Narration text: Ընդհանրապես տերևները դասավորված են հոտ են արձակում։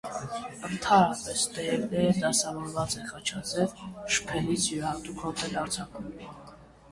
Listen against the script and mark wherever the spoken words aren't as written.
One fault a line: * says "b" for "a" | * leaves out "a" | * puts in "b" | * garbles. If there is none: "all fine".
* puts in "խաչաձև շփելիս յուրահատուկ"